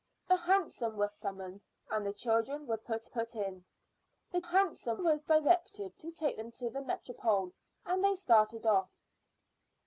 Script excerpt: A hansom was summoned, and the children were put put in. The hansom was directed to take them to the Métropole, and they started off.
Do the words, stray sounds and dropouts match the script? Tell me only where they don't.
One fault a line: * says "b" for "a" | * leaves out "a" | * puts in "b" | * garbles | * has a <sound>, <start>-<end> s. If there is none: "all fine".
all fine